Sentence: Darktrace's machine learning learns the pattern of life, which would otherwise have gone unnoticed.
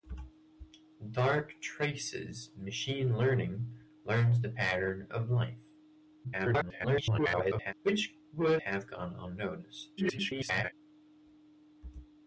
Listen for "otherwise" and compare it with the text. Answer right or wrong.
wrong